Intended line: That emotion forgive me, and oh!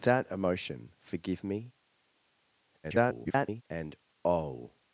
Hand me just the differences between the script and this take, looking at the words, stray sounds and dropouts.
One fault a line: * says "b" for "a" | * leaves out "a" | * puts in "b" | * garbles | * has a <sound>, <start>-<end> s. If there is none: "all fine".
* garbles